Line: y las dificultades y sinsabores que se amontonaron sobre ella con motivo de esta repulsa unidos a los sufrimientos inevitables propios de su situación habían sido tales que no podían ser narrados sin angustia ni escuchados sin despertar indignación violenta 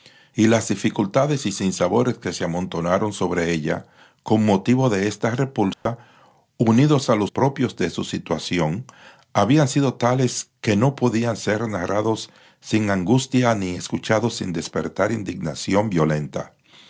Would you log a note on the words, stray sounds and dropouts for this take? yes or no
yes